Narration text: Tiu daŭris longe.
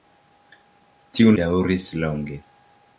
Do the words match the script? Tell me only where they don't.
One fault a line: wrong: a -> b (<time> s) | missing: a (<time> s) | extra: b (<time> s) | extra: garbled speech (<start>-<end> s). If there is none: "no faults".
no faults